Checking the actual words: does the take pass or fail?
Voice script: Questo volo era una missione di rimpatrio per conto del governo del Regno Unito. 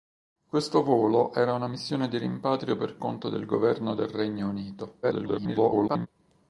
fail